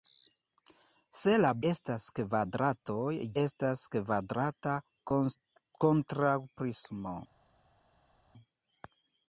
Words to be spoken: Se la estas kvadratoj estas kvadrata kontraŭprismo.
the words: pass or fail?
pass